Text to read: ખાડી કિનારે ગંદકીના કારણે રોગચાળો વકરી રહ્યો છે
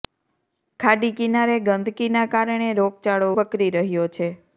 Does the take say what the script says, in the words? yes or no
yes